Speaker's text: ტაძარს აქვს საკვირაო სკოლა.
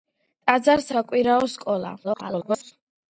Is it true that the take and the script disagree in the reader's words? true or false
true